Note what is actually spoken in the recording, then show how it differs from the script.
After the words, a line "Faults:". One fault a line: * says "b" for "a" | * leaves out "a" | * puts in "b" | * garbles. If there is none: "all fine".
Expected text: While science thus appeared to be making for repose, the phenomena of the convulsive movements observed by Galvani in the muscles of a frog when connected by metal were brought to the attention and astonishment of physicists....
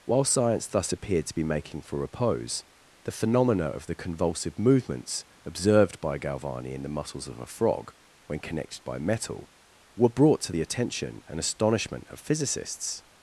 While science thus appeared to be making for repose, the phenomena of the convulsive movements observed by Galvani in the muscles of a frog when connected by metal were brought to the attention and astonishment of physicists....
Faults:
all fine